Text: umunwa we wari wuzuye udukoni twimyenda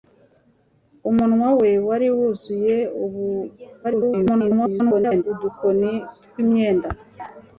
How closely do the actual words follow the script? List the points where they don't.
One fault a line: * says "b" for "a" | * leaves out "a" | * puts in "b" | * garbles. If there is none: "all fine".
* garbles